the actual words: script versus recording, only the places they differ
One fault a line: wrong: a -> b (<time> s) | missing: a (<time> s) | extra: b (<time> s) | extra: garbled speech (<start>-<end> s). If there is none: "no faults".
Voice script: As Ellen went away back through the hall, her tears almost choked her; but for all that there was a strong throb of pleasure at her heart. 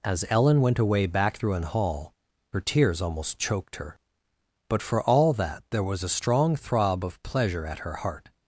wrong: the -> an (1.5 s)